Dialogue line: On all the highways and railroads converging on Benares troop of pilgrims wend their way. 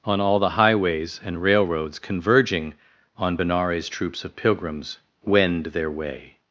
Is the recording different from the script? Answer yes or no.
yes